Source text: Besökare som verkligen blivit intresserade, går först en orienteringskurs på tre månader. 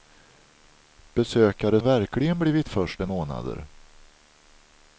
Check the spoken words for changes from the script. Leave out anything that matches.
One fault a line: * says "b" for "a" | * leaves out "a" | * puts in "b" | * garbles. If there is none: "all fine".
* leaves out "som"
* leaves out "intresserade går"
* leaves out "orienteringskurs på tre"